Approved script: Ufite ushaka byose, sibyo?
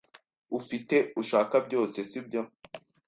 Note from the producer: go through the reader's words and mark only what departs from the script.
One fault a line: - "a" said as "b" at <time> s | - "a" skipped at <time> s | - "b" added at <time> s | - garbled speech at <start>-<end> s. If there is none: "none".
none